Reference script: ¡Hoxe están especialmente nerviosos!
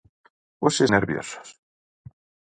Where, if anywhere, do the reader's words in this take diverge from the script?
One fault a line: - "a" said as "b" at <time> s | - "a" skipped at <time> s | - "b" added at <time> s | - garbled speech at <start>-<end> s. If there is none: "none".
- "están especialmente" skipped at 0.8 s